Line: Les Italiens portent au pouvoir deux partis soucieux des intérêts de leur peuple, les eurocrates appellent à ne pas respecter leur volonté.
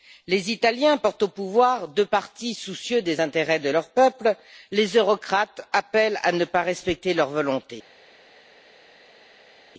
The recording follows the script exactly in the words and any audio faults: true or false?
true